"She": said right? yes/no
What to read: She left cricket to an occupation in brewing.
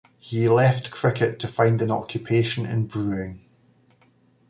no